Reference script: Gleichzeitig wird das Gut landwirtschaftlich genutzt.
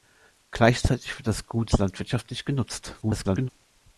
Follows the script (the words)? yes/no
no